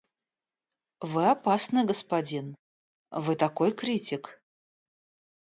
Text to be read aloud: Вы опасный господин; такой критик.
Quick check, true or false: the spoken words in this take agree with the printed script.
false